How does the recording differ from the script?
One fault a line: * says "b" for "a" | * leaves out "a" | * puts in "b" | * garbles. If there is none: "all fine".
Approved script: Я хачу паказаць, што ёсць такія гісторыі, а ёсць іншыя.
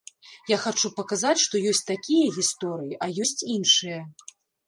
all fine